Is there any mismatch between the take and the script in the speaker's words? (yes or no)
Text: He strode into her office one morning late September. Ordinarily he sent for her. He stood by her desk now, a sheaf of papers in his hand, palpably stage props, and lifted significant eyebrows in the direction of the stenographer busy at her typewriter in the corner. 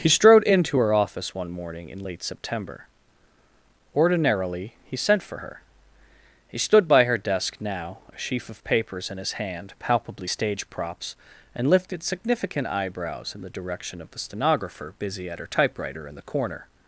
yes